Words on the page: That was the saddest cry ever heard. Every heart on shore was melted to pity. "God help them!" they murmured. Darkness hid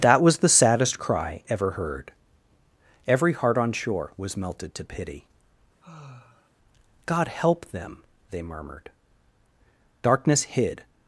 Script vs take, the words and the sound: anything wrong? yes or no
yes